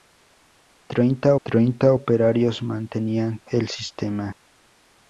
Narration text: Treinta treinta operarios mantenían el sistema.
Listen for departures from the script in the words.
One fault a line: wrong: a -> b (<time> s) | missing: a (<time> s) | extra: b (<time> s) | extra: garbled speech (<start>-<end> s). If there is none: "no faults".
no faults